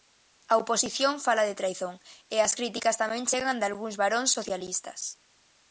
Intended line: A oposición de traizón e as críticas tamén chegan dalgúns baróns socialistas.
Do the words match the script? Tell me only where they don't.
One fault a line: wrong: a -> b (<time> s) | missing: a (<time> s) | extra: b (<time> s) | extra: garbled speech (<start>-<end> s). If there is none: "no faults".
extra: fala (1.2 s)